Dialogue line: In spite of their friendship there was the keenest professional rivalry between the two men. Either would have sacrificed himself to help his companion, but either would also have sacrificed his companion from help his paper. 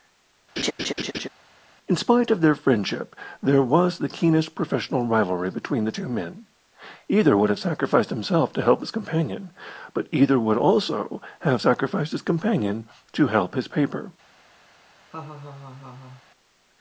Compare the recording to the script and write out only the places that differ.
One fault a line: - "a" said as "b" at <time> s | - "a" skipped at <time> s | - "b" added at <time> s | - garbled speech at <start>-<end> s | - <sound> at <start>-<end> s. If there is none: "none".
- laugh at 0.6-1.3 s
- "from" said as "to" at 13.1 s
- laugh at 15.1-16.2 s